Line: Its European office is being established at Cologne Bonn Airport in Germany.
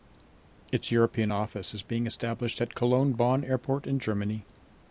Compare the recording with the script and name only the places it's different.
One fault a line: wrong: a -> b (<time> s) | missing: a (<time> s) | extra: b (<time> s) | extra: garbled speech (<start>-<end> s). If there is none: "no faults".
no faults